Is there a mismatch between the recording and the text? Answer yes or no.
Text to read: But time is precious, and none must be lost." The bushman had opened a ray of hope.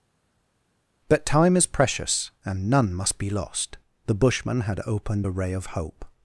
no